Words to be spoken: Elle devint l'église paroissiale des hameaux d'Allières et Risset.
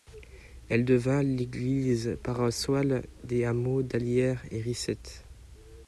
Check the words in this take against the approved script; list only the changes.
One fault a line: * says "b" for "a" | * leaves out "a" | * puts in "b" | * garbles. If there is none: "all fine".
all fine